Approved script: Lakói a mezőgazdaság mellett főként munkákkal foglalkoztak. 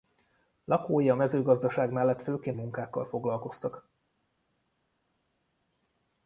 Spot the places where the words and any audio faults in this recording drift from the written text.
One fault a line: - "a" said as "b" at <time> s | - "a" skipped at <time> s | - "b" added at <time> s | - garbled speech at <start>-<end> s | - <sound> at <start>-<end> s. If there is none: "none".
none